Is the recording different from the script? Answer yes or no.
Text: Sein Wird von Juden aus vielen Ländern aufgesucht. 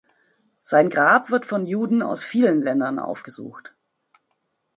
yes